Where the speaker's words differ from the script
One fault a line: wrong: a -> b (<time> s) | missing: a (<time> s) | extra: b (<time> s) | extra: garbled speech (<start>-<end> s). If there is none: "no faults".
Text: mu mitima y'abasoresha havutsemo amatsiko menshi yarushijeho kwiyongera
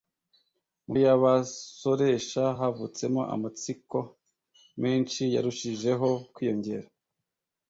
missing: mitima (0.9 s)